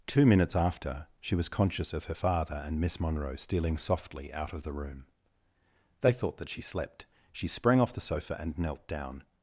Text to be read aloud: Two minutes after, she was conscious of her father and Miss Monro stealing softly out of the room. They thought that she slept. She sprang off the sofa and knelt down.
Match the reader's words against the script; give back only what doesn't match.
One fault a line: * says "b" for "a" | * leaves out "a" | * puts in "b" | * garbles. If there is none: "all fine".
all fine